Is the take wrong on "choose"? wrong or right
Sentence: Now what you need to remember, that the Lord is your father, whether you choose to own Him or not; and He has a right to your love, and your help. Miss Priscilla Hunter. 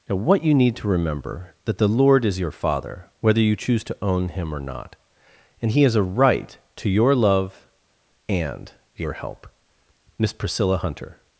right